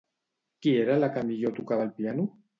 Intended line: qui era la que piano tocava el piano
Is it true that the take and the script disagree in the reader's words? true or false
true